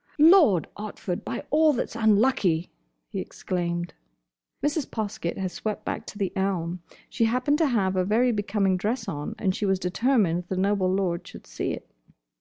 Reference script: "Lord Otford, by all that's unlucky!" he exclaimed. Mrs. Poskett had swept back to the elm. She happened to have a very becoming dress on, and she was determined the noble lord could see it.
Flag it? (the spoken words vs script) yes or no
yes